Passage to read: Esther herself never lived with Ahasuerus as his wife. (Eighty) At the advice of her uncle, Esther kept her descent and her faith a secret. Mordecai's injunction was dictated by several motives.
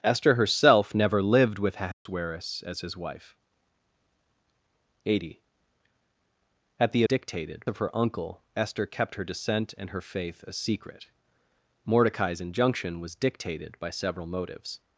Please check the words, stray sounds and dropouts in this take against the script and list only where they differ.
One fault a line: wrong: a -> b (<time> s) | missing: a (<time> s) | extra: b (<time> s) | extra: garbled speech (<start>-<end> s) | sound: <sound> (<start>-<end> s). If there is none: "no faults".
sound: dropout (1.9-2.1 s)
wrong: advice -> dictated (7.0 s)